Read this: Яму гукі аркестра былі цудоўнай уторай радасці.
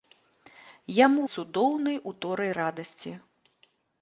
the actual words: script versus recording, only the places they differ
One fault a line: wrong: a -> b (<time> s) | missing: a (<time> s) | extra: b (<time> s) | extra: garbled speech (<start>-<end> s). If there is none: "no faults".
missing: гукі аркестра былі (1.2 s)